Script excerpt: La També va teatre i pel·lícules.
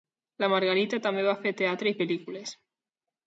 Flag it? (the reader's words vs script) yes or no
yes